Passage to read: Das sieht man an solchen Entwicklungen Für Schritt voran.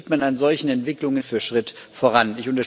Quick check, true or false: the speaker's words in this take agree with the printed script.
true